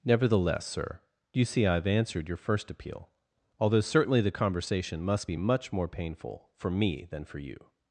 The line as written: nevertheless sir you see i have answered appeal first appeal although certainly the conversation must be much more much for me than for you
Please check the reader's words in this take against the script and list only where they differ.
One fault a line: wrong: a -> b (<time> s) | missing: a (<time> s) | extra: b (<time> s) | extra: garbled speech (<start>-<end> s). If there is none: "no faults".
wrong: appeal -> your (2.3 s)
wrong: much -> painful (5.9 s)